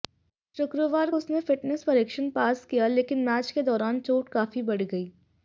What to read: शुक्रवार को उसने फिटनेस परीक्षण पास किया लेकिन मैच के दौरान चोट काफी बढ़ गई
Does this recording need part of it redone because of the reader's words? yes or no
yes